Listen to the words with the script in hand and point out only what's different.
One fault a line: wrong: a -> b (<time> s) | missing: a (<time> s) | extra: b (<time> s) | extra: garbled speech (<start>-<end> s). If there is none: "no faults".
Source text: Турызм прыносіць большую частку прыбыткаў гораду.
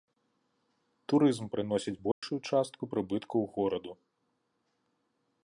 no faults